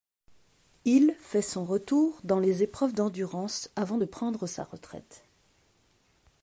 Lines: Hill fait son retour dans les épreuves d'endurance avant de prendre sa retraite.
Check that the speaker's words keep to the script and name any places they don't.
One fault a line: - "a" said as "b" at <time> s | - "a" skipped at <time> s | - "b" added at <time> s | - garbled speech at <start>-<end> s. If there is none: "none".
none